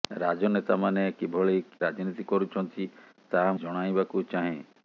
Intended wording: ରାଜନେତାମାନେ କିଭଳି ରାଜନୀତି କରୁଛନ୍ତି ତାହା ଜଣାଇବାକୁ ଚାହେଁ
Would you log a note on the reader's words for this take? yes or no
no